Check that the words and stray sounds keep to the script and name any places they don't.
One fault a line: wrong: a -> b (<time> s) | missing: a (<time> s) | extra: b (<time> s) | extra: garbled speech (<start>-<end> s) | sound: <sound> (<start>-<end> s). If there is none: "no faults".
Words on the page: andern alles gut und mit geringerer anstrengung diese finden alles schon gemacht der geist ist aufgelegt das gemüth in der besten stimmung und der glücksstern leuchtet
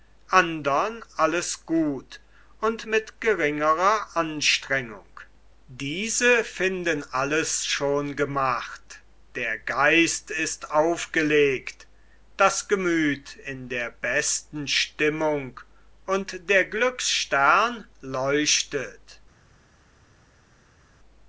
no faults